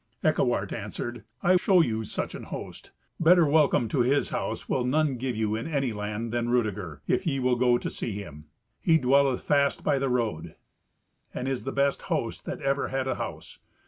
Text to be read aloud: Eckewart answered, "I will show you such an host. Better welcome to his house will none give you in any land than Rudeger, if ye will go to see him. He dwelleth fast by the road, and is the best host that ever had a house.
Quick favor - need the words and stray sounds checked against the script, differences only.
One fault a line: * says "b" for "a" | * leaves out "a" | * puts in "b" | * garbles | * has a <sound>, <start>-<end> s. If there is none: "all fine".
* leaves out "will"